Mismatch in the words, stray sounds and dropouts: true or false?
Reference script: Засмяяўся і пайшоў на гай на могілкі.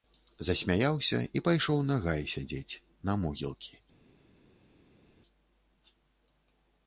true